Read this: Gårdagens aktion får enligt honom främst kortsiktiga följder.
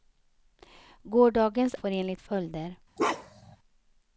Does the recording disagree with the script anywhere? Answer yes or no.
yes